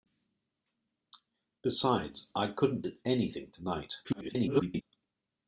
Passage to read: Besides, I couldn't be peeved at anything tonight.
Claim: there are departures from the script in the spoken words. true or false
true